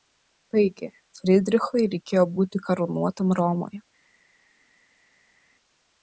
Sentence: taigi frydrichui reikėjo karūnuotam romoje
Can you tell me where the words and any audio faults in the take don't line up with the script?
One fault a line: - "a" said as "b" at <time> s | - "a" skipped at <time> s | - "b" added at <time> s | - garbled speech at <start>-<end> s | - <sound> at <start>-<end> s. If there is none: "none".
- "būti" added at 2.4 s